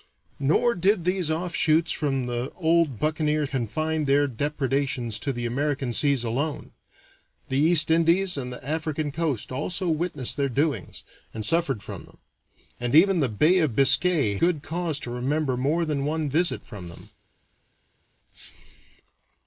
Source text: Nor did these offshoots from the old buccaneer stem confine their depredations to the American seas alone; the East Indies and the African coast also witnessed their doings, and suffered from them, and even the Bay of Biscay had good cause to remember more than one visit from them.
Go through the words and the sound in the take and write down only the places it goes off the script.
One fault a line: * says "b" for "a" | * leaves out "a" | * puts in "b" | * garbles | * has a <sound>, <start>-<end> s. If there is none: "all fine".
* leaves out "stem"
* leaves out "had"